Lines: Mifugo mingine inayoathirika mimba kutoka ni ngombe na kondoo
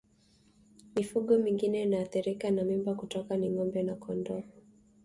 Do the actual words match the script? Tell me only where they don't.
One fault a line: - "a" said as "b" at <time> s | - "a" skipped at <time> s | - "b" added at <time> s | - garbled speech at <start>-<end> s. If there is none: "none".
- "na" added at 2.5 s